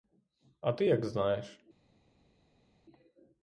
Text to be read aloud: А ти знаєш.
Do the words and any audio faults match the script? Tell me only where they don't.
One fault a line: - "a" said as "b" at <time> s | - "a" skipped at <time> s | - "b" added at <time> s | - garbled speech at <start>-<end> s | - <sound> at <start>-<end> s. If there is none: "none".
- "як" added at 0.8 s